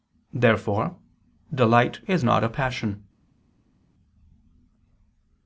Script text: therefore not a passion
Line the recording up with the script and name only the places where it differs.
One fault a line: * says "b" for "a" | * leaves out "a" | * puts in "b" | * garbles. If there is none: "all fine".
* puts in "delight is"